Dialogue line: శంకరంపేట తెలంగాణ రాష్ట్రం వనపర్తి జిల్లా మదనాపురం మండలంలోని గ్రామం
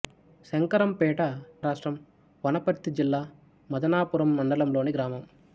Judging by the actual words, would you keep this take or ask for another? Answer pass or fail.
fail